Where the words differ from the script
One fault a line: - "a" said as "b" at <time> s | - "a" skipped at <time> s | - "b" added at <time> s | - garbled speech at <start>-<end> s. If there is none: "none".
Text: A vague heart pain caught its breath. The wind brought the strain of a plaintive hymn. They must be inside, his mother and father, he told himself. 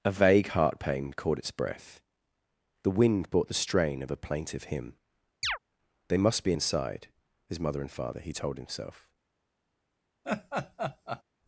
none